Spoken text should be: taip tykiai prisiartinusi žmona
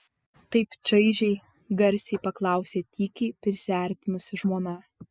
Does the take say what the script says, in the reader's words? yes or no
no